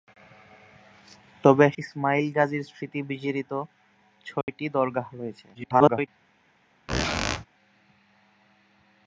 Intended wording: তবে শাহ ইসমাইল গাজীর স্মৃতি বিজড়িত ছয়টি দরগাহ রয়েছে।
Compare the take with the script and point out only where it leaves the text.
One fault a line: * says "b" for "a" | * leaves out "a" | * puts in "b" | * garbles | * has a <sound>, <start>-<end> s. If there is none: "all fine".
* leaves out "শাহ"
* has a dropout, 4.4-4.5 s
* garbles
* has a squeak, 6.9-7.5 s